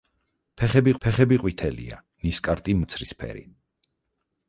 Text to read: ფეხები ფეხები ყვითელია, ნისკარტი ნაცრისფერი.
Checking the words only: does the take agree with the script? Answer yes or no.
yes